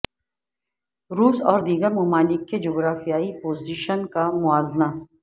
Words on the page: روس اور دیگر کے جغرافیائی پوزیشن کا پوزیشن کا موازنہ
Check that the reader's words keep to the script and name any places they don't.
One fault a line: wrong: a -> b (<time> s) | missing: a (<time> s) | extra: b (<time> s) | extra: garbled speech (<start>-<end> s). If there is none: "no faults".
extra: ممالک (1.9 s)
missing: پوزیشن کا (4.3 s)